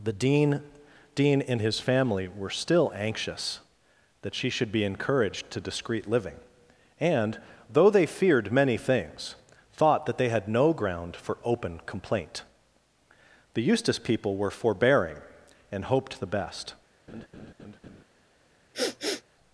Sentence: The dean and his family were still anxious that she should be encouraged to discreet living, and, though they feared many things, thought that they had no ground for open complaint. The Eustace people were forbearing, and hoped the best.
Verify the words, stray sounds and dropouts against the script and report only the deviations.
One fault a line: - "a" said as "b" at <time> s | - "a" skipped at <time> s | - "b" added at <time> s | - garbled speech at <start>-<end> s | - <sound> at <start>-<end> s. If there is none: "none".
- "dean" added at 1.1 s
- laugh at 17.1-18.0 s
- sniff at 18.7-19.2 s